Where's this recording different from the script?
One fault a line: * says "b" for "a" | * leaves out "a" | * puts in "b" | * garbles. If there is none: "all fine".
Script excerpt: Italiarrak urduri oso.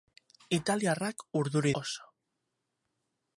all fine